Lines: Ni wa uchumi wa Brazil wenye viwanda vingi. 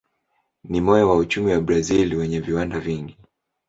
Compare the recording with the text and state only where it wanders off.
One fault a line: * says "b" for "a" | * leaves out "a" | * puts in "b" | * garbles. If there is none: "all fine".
* puts in "moyo"